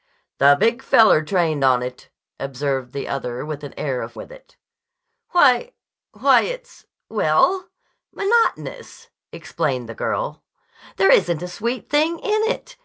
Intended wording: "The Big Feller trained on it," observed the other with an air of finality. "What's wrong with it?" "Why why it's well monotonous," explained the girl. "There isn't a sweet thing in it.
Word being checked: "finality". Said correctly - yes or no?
no